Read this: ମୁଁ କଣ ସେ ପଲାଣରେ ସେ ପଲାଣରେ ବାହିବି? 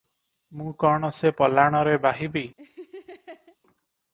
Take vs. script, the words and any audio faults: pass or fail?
fail